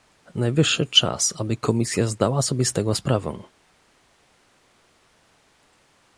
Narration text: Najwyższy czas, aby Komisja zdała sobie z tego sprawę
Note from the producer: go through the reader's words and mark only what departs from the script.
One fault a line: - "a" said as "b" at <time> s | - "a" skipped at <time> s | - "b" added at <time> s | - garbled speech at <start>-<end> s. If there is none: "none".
none